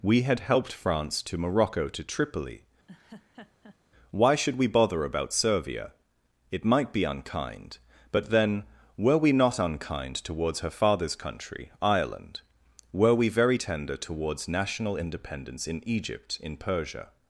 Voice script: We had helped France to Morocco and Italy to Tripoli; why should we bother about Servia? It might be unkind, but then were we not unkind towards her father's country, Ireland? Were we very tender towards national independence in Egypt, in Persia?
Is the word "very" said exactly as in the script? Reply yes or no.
yes